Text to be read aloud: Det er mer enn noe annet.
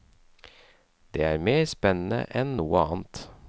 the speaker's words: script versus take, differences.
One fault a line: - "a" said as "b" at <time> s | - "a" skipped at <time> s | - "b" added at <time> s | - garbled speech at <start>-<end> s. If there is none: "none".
- "spennende" added at 1.6 s